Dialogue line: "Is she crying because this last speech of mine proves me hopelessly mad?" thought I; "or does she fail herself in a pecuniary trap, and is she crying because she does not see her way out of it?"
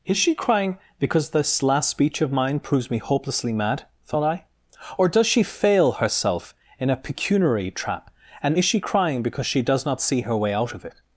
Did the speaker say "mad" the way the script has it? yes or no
yes